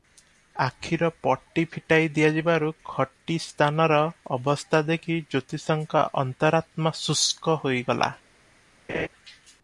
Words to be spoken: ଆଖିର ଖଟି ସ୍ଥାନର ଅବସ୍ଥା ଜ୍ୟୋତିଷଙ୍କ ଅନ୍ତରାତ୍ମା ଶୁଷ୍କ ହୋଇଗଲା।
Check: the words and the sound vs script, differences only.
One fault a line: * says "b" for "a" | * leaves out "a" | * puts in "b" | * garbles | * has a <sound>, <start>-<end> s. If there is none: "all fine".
* puts in "ପଟି ଫିଟାଇ ଦିଆଯିବାରୁ"
* puts in "ଦେଖି"
* has a laugh, 8.9-9.1 s